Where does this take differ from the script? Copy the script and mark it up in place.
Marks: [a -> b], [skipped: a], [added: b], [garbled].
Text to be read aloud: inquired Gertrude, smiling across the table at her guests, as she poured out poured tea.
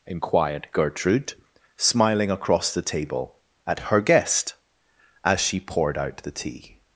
inquired Gertrude, smiling across the table at her [guests, -> guest] as she poured out [poured -> the] tea.